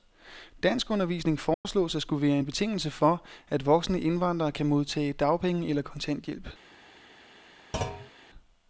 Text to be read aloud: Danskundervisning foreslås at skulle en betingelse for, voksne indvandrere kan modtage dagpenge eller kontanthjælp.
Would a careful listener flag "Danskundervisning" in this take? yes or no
no